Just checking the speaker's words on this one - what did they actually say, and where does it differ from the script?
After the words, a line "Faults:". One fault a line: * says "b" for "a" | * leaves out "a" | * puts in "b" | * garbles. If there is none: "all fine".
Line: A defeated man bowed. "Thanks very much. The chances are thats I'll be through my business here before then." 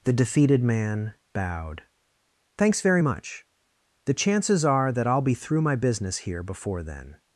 The defeated man bowed. "Thanks very much. The chances are that I'll be through my business here before then."
Faults:
* says "The" for "A"
* says "that" for "thats"